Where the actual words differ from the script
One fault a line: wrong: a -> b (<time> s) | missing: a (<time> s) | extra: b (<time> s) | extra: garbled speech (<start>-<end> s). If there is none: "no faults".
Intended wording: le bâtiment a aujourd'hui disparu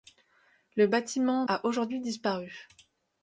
no faults